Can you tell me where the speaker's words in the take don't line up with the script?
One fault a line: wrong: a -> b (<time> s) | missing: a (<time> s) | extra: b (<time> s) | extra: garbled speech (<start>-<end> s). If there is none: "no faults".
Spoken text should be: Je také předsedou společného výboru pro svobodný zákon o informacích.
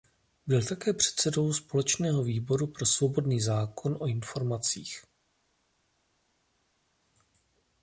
wrong: Je -> Byl (0.5 s)